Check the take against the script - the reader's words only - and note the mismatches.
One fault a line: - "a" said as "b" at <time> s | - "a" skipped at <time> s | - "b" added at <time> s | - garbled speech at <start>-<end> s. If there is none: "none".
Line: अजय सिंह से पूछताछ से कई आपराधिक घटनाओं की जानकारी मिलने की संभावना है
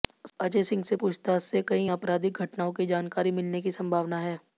none